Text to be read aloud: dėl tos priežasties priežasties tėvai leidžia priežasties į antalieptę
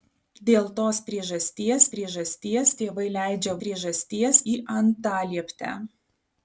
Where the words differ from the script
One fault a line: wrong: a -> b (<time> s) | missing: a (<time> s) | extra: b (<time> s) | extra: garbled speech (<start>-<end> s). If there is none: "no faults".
no faults